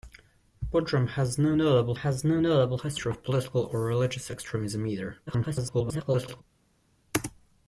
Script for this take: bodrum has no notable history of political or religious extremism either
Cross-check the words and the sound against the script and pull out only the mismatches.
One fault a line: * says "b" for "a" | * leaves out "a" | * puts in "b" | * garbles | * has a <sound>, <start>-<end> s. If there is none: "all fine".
* puts in "has no notable"
* garbles